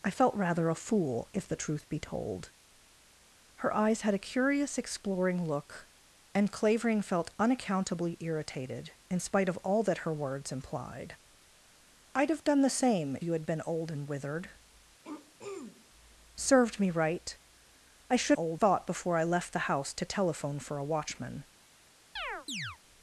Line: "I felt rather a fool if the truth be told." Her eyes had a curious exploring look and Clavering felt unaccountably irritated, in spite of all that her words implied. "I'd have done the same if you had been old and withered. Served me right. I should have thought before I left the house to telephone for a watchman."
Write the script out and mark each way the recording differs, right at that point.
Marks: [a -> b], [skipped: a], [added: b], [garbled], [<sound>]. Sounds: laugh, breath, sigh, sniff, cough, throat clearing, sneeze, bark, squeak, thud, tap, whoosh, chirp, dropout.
"I felt rather a fool if the truth be told." Her eyes had a curious exploring look and Clavering felt unaccountably irritated, in spite of all that her words implied. "I'd have done the same [skipped: if] you had been old and withered. [throat clearing] Served me right. I should [have -> old] thought before I left the house to telephone for a watchman." [chirp]